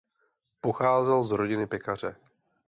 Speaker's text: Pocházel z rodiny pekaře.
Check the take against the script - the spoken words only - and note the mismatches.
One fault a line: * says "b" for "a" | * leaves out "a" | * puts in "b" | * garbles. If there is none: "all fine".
all fine